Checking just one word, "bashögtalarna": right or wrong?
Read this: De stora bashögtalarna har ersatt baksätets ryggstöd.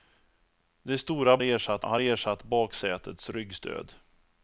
wrong